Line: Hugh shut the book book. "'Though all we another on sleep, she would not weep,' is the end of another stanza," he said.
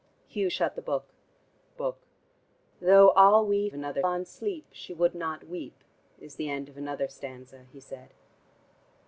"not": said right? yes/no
yes